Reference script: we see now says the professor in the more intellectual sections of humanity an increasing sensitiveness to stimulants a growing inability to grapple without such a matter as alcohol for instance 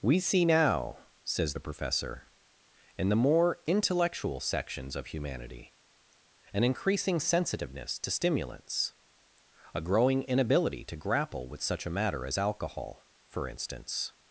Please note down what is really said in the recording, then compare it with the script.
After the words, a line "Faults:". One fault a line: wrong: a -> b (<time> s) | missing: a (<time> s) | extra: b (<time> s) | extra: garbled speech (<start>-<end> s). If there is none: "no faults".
we see now says the professor in the more intellectual sections of humanity an increasing sensitiveness to stimulants a growing inability to grapple with such a matter as alcohol for instance
Faults:
wrong: without -> with (11.5 s)